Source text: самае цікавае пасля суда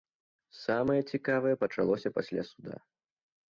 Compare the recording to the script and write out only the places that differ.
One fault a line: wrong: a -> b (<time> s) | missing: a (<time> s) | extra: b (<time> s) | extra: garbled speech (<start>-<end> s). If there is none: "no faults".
extra: пачалося (1.7 s)